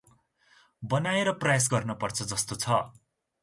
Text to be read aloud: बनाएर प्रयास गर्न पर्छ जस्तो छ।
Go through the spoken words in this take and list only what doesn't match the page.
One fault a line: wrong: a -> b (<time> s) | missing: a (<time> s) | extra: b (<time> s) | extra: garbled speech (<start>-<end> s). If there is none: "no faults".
no faults